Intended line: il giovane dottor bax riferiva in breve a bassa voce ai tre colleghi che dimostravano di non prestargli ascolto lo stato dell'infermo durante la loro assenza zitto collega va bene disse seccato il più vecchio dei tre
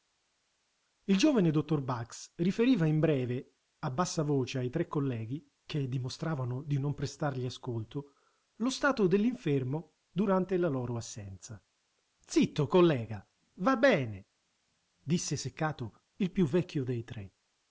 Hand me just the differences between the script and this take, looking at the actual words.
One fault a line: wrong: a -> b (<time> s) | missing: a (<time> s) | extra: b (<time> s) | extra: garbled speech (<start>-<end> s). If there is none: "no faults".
no faults